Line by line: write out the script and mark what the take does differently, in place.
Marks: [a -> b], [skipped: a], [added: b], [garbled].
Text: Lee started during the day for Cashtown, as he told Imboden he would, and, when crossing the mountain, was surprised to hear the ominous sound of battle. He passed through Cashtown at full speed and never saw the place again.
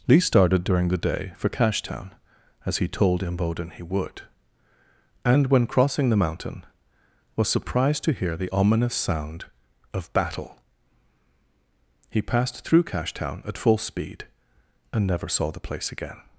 Lee started during the day for Cashtown, as he told Imboden he would, and, when crossing the mountain, was surprised to hear the ominous sound of battle. He passed through Cashtown at full speed and never saw the place again.